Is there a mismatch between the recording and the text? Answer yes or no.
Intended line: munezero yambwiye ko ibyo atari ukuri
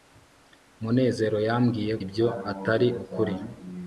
yes